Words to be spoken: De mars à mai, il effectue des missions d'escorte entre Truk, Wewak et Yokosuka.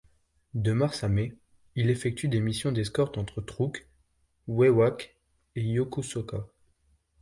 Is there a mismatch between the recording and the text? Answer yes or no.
no